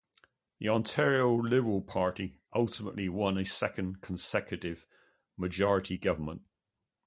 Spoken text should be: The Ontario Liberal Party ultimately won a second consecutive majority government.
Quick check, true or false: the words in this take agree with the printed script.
true